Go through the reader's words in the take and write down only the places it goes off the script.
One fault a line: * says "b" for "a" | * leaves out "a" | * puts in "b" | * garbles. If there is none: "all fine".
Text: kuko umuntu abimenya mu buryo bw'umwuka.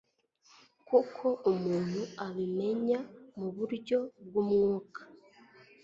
all fine